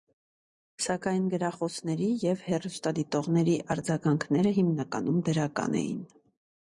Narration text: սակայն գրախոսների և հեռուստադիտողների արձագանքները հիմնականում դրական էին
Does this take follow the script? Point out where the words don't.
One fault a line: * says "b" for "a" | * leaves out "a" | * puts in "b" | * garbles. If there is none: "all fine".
all fine